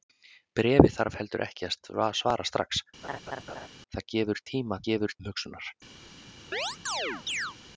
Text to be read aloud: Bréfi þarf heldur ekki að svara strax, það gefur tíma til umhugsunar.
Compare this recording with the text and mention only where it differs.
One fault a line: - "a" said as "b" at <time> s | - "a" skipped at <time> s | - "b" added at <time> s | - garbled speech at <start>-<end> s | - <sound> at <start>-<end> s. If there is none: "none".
- laugh at 3.0-3.7 s
- "til" said as "gefur" at 4.9 s
- chirp at 6.5-7.6 s